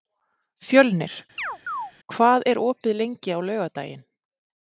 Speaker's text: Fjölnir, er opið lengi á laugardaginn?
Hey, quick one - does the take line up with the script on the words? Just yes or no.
no